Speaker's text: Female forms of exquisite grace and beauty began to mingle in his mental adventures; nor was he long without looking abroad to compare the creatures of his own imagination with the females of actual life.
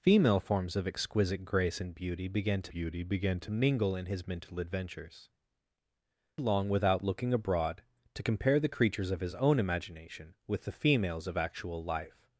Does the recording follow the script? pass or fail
fail